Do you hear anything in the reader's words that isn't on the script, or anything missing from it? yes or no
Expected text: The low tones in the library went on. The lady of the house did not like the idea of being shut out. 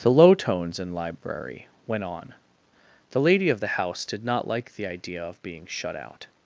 yes